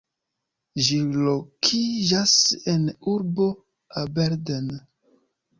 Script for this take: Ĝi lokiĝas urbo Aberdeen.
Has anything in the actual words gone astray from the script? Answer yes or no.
yes